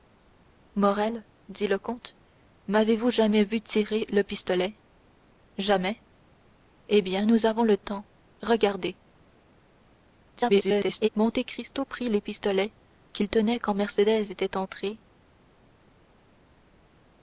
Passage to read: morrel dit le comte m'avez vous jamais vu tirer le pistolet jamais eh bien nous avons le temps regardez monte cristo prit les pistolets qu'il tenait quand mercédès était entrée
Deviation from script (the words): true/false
true